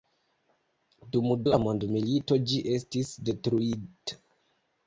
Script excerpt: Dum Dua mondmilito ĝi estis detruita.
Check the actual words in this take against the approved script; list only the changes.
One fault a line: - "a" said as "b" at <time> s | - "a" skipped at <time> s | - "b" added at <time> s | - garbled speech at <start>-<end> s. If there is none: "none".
none